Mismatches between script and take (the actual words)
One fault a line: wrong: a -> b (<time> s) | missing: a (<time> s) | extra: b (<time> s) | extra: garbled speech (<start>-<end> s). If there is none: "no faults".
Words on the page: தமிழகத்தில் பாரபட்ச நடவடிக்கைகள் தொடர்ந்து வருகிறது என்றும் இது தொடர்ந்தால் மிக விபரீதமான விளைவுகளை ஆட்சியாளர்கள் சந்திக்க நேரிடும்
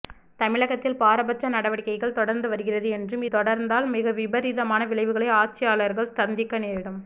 missing: இது (3.2 s)